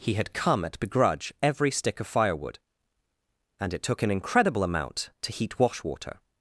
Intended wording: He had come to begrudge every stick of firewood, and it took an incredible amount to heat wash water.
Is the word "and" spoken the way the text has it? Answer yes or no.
yes